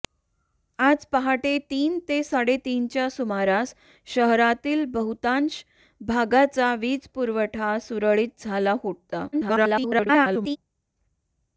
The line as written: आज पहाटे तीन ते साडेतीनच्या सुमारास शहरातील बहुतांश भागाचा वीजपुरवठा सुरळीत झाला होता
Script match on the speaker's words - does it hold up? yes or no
no